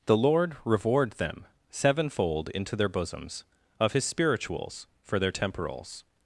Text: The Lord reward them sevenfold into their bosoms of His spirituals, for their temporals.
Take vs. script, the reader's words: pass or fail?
pass